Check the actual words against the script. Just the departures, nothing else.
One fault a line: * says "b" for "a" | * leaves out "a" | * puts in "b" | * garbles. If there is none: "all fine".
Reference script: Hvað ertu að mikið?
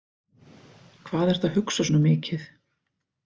* puts in "hugsa svona"